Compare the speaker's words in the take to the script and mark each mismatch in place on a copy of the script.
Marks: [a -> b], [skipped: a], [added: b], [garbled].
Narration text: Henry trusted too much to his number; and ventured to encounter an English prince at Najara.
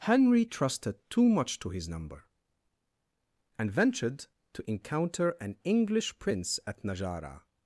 Henry trusted too much to his number; and ventured to encounter an English prince at Najara.